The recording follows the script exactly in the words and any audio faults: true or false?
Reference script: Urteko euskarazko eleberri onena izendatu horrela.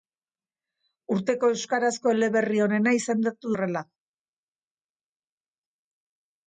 true